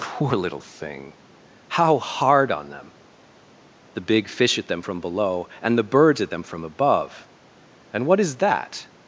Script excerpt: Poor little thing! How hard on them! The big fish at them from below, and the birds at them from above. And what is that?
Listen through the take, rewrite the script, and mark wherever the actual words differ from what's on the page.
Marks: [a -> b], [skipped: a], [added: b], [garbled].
Poor little thing! How hard on them! The big fish at them from below, and the birds at them from above. And what is that?